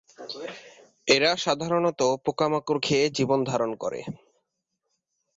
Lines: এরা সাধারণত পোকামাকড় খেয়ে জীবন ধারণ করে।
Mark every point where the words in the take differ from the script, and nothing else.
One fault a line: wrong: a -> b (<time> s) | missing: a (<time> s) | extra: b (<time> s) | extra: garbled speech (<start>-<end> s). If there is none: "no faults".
no faults